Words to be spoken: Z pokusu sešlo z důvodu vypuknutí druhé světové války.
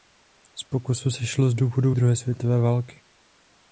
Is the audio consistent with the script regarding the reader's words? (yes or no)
no